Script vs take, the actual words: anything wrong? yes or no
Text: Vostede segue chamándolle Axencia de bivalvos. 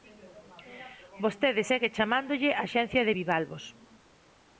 no